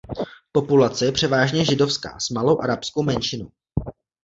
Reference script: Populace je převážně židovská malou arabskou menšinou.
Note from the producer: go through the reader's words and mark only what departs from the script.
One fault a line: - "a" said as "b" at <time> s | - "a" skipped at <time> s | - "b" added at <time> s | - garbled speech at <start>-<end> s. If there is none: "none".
- "s" added at 2.2 s